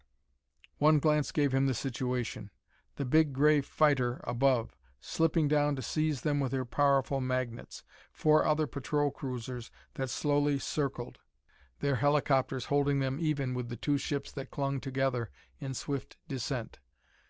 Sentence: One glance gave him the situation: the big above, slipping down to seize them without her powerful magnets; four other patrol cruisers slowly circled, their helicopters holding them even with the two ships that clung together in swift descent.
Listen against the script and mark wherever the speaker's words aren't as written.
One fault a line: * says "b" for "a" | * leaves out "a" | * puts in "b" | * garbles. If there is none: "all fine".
* puts in "gray fighter"
* says "with" for "without"
* puts in "that"